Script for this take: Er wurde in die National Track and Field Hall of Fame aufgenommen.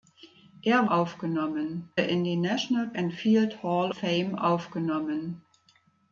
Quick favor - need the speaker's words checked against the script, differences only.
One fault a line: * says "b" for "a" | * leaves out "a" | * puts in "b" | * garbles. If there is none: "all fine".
* says "aufgenommen" for "wurde"
* leaves out "Track"
* leaves out "of"